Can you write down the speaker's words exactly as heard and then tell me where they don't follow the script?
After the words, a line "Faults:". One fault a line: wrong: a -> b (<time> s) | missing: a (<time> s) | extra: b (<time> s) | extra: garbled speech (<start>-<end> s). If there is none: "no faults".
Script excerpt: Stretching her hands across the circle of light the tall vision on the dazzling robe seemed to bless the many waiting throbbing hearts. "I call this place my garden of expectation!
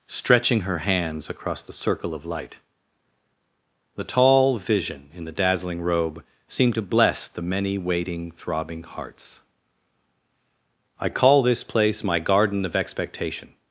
Stretching her hands across the circle of light the tall vision in the dazzling robe seemed to bless the many waiting throbbing hearts. "I call this place my garden of expectation!
Faults:
wrong: on -> in (5.1 s)